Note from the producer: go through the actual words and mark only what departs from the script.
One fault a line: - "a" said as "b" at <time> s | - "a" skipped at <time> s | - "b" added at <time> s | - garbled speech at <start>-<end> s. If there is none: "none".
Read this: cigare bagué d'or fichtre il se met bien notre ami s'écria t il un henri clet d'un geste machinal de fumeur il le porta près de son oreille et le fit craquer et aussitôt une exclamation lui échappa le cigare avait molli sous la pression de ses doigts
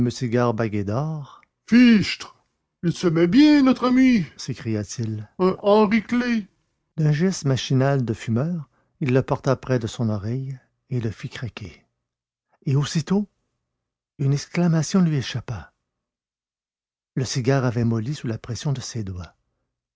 none